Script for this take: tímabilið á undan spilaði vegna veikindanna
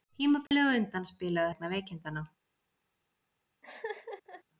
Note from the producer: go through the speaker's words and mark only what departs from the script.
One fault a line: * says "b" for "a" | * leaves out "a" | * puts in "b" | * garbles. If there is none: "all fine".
all fine